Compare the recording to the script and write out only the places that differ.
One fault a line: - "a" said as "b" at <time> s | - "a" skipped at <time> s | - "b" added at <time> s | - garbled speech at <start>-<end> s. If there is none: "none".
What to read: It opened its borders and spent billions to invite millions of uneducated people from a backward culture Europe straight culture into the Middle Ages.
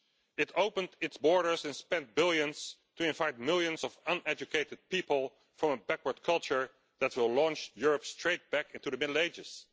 - "that will launch" added at 7.0 s
- "culture" said as "back" at 8.5 s